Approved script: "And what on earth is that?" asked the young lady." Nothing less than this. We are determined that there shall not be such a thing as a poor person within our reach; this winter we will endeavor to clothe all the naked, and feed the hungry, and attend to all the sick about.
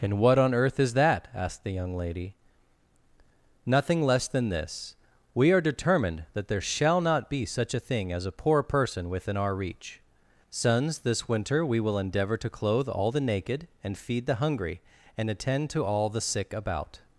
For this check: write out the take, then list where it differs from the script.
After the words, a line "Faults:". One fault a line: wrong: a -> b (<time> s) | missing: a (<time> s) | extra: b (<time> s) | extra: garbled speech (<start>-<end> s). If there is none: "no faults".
"And what on earth is that?" asked the young lady." Nothing less than this. We are determined that there shall not be such a thing as a poor person within our reach; sons this winter we will endeavor to clothe all the naked, and feed the hungry, and attend to all the sick about.
Faults:
extra: sons (10.5 s)